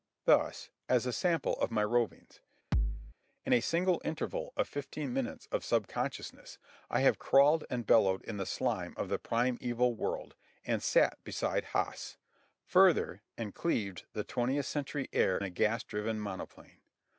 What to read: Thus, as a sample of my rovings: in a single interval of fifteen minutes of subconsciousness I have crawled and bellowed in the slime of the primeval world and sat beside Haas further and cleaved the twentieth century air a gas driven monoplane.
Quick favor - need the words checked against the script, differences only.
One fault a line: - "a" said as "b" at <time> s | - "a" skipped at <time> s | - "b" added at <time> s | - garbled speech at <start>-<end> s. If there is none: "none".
none